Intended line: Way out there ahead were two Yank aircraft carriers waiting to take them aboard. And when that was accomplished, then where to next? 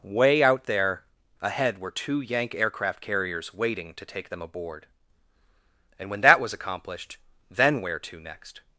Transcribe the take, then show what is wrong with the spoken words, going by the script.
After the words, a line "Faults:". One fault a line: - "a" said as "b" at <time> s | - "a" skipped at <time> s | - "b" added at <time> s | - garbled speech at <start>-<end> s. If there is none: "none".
Way out there ahead were two Yank aircraft carriers waiting to take them aboard. And when that was accomplished, then where to next?
Faults:
none